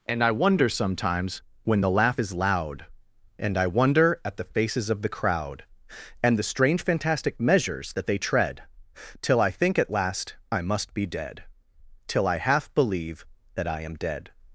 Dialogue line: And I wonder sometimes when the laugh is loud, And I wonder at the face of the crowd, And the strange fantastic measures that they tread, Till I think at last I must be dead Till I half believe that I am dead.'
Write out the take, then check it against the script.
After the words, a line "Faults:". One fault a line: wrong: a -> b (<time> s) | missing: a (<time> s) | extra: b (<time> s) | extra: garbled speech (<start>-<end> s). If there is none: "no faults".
And I wonder sometimes when the laugh is loud, And I wonder at the faces of the crowd, And the strange fantastic measures that they tread, Till I think at last I must be dead Till I half believe that I am dead.'
Faults:
wrong: face -> faces (4.4 s)